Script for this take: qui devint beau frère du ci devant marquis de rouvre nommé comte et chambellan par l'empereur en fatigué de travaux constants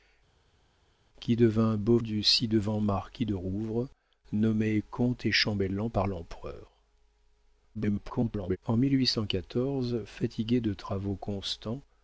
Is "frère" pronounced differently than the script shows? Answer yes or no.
yes